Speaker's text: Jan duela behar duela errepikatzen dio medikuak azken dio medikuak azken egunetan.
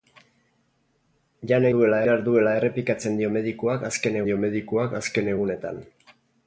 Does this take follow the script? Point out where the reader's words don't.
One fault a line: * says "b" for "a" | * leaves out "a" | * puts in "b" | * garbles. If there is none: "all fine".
all fine